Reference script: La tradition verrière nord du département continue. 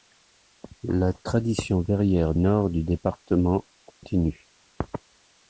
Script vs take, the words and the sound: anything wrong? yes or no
yes